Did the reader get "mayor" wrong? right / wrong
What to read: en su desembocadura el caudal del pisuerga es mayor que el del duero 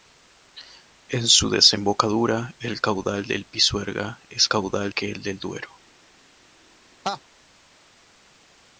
wrong